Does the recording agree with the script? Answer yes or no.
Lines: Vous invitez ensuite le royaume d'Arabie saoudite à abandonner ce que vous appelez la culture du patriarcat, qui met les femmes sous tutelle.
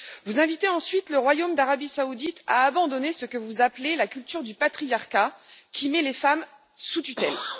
yes